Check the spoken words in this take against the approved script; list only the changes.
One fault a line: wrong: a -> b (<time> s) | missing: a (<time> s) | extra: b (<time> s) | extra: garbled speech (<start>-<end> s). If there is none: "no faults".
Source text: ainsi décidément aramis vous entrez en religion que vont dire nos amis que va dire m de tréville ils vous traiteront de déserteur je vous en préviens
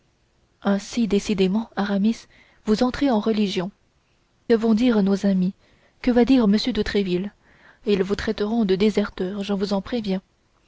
missing: que (3.7 s)